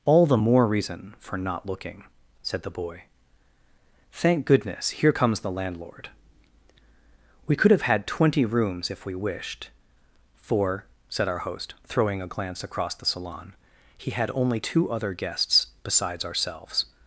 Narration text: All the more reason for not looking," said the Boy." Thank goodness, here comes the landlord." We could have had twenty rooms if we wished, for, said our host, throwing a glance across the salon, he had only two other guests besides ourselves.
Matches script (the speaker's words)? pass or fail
pass